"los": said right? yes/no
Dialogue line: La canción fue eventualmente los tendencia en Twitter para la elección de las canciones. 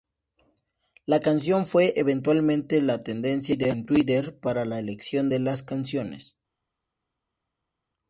no